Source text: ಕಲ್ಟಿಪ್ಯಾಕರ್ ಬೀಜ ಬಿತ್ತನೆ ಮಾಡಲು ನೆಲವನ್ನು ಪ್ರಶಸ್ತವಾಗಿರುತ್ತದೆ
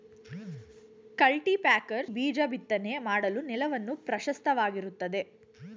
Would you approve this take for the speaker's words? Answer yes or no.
yes